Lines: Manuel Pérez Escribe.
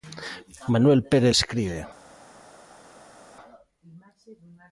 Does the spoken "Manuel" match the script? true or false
true